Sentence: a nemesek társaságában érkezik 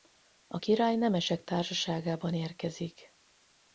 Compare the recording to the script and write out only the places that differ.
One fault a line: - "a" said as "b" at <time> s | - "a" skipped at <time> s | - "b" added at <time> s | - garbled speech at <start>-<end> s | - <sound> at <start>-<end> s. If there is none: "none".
- "király" added at 0.5 s